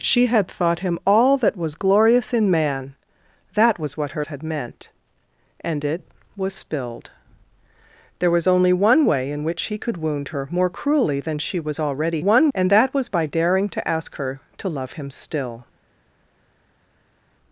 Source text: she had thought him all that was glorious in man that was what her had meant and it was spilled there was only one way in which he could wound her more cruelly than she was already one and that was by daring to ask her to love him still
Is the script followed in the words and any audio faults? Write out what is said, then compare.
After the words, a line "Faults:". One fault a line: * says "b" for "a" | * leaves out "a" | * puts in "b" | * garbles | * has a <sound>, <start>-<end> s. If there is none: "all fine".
she had thought him all that was glorious in man that was what her had meant and it was spilled there was only one way in which he could wound her more cruelly than she was already one and that was by daring to ask her to love him still
Faults:
all fine